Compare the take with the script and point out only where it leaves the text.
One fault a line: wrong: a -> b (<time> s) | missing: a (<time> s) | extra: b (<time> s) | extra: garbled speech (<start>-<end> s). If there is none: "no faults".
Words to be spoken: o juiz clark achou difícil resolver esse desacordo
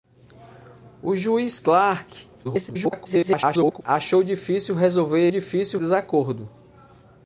extra: garbled speech (2.4-3.8 s)
wrong: esse -> difícil (5.3 s)